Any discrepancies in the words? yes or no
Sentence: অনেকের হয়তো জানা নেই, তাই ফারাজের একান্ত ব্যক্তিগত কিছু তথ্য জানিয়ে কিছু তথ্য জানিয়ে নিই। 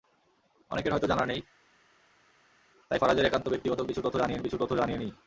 no